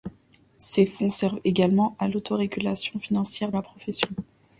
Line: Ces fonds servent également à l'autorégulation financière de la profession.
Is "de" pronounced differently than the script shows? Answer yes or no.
yes